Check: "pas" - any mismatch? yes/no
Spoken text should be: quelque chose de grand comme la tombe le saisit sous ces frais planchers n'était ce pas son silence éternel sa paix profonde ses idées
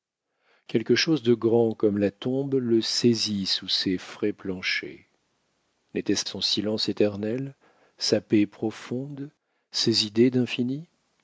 yes